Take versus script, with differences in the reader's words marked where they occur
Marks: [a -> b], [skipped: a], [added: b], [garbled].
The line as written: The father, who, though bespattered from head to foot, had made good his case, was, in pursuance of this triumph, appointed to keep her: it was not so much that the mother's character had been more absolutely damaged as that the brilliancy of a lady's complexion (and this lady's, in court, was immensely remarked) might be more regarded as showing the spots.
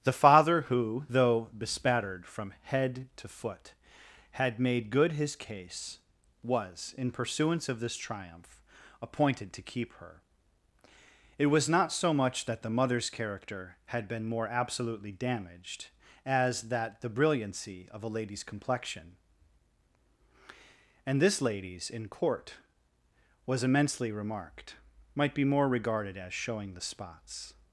The father, who, though bespattered from head to foot, had made good his case, was, in pursuance of this triumph, appointed to keep her: it was not so much that the mother's character had been more absolutely damaged as that the brilliancy of a lady's complexion (and this lady's, in court, was immensely remarked) might be more regarded as showing the spots.